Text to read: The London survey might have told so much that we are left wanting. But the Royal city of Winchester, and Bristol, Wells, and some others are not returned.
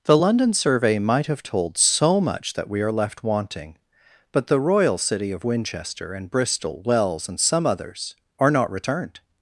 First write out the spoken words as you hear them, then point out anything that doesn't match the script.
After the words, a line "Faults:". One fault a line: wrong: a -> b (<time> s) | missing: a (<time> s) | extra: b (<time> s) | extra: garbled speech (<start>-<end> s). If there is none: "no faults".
The London survey might have told so much that we are left wanting. But the Royal city of Winchester, and Bristol, Wells, and some others are not returned.
Faults:
no faults